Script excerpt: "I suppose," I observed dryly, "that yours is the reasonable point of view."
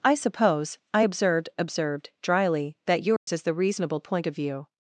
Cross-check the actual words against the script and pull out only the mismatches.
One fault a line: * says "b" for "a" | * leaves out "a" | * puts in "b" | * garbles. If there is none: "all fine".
* puts in "observed"